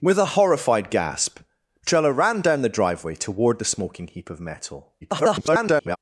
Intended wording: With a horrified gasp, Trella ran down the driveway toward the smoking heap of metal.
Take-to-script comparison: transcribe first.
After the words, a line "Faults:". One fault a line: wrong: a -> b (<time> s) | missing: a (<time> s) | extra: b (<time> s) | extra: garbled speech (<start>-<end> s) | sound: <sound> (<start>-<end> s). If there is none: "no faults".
With a horrified gasp, Trella ran down the driveway toward the smoking heap of metal. [garbled]
Faults:
extra: garbled speech (5.0-6.0 s)